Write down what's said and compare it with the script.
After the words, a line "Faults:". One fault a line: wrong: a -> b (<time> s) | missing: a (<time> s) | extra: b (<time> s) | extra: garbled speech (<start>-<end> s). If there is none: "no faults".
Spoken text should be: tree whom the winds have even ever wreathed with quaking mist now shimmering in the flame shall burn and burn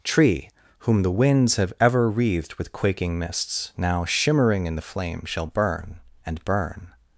tree whom the winds have ever wreathed with quaking mists now shimmering in the flame shall burn and burn
Faults:
missing: even (1.7 s)
wrong: mist -> mists (3.2 s)